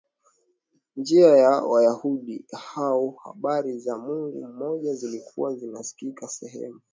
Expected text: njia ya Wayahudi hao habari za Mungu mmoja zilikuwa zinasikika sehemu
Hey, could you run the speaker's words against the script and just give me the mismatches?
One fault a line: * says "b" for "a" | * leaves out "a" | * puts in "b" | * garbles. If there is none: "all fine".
all fine